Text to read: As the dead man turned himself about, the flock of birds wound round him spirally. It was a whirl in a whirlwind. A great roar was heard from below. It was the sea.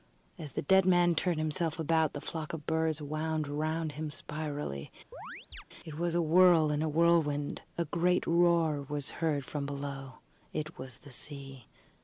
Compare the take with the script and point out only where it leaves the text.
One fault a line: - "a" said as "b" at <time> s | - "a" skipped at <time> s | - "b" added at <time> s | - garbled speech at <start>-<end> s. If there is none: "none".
none